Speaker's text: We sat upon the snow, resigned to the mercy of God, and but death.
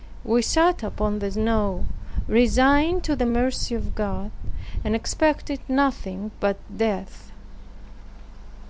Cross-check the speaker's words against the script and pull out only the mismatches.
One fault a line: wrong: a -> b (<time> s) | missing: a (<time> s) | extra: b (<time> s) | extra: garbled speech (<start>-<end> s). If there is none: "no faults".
extra: expected nothing (4.9 s)